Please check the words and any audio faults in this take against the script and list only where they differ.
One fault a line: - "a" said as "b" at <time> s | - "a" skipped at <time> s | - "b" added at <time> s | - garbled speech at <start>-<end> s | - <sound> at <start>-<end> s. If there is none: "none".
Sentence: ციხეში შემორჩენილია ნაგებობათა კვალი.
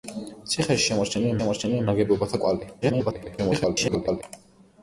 - "შემორჩენილია" added at 1.4 s
- garbled speech at 2.8-4.2 s